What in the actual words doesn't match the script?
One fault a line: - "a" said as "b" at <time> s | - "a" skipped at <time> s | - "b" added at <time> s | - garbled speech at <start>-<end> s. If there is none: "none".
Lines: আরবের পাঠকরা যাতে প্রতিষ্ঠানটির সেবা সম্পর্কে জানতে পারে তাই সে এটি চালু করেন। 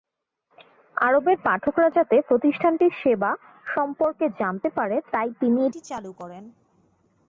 - "সে" said as "তিনি" at 5.4 s